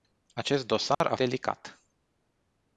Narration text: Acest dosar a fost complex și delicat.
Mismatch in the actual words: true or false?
true